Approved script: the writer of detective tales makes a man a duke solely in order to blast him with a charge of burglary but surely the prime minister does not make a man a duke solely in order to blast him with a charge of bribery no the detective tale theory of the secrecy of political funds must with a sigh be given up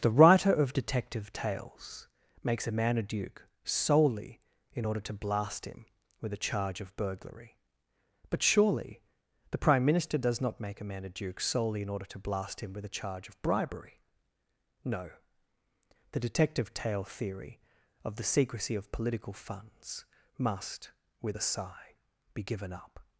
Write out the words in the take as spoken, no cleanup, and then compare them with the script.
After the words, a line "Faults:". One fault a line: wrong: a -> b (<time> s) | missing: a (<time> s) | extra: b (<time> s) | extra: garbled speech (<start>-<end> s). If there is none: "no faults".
the writer of detective tales makes a man a duke solely in order to blast him with a charge of burglary but surely the prime minister does not make a man a duke solely in order to blast him with a charge of bribery no the detective tale theory of the secrecy of political funds must with a sigh be given up
Faults:
no faults